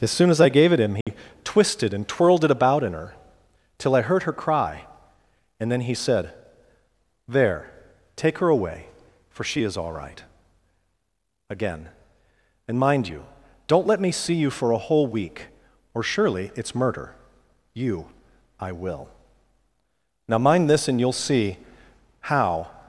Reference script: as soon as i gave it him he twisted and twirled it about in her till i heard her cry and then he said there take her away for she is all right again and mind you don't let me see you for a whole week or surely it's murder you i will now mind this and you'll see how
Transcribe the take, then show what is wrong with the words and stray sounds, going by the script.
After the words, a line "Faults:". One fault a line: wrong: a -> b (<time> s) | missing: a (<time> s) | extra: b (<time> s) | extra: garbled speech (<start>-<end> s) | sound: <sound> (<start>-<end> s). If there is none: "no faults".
as soon as i gave it him he twisted and twirled it about in her till i heard her cry and then he said there take her away for she is all right again and mind you don't let me see you for a whole week or surely it's murder you i will now mind this and you'll see how
Faults:
sound: dropout (1.0-1.1 s)